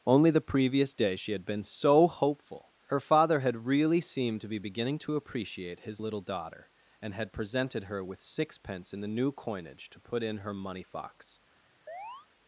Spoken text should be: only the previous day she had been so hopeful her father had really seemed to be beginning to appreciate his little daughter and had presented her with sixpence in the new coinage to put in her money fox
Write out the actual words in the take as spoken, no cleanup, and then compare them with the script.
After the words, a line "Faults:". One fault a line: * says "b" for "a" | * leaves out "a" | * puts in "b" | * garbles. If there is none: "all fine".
only the previous day she had been so hopeful her father had really seemed to be beginning to appreciate his little daughter and had presented her with sixpence in the new coinage to put in her money fox
Faults:
all fine